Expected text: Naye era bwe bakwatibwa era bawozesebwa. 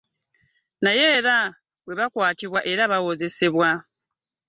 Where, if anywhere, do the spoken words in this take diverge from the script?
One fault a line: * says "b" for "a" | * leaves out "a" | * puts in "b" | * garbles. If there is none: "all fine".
all fine